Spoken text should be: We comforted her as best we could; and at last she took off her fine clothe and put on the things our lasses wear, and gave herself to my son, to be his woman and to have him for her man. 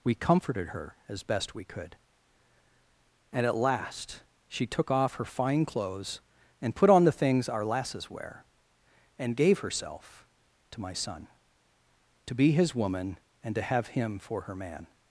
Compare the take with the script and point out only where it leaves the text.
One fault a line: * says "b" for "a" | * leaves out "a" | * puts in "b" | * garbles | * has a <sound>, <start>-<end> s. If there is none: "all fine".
* says "clothes" for "clothe"